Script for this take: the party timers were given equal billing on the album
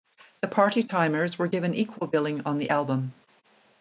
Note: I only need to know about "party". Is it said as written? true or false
true